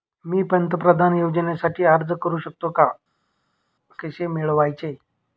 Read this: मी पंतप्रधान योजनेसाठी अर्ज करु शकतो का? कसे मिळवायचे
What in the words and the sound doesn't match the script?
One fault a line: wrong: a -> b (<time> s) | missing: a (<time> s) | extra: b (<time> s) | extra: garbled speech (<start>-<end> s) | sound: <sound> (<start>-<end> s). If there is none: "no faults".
no faults